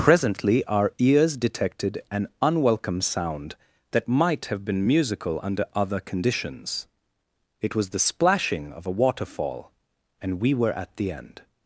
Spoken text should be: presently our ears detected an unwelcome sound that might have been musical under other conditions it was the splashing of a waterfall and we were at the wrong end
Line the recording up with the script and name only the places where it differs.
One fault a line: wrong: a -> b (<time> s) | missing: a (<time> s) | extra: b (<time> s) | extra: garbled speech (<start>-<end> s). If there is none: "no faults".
missing: wrong (11.1 s)